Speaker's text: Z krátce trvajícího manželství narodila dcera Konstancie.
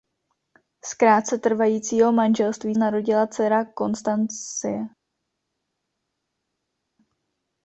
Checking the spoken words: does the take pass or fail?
pass